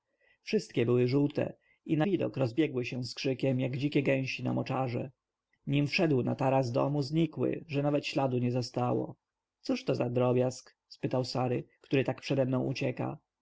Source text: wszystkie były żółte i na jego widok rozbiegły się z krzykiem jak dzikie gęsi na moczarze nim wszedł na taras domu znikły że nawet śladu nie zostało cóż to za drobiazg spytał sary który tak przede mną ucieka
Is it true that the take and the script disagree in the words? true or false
true